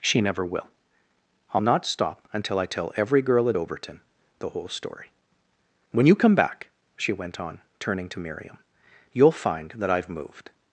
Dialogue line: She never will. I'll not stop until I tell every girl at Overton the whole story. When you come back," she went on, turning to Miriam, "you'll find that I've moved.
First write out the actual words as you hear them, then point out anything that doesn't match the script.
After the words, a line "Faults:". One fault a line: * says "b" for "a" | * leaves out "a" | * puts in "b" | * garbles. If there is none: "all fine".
She never will. I'll not stop until I tell every girl at Overton the whole story. When you come back," she went on, turning to Miriam, "you'll find that I've moved.
Faults:
all fine